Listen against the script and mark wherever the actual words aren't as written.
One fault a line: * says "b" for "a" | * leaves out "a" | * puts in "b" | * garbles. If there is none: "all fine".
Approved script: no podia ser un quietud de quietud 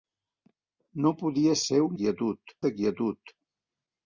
all fine